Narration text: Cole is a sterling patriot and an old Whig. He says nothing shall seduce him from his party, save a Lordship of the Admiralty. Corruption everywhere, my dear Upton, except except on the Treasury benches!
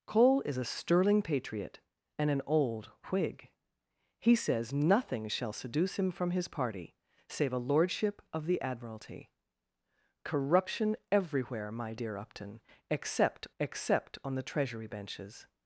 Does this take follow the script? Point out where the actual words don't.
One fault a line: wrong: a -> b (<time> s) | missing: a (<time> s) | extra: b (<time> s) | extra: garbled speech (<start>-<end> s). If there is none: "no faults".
no faults